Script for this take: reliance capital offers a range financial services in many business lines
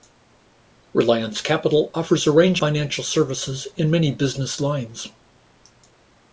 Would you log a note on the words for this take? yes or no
no